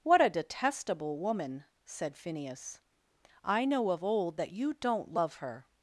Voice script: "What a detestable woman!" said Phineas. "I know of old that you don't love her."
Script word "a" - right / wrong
right